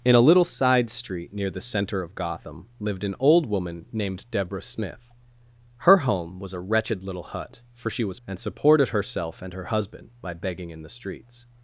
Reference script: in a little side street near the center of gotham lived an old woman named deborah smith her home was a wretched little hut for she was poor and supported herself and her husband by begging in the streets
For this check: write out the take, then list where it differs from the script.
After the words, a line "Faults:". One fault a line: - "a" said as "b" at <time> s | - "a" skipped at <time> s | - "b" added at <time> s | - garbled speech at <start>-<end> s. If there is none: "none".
in a little side street near the center of gotham lived an old woman named deborah smith her home was a wretched little hut for she was and supported herself and her husband by begging in the streets
Faults:
- "poor" skipped at 8.2 s